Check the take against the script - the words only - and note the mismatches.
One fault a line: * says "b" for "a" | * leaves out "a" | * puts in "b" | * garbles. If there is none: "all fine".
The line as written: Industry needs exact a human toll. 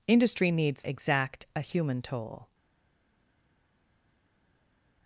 all fine